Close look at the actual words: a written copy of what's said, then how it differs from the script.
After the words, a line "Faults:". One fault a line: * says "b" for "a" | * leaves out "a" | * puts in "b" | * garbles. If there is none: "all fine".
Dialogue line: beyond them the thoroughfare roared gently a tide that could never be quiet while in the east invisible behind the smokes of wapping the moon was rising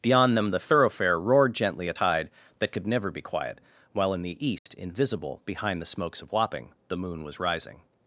beyond them the thoroughfare roared gently a tide that could never be quiet while in the east invisible behind the smokes of wapping the moon was rising
Faults:
all fine